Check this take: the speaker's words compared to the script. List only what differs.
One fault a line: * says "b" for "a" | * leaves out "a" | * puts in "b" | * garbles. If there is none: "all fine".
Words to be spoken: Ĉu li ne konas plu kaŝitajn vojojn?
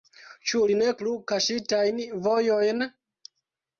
* leaves out "konas"